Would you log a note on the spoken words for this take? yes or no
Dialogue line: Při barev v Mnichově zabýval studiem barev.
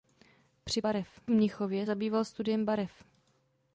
no